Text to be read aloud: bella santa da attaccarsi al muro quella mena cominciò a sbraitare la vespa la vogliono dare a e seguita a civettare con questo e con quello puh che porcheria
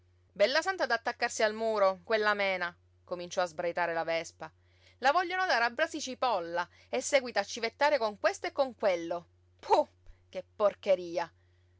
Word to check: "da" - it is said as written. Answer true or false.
true